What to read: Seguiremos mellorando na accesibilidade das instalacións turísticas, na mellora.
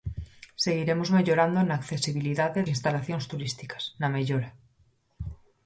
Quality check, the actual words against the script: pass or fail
fail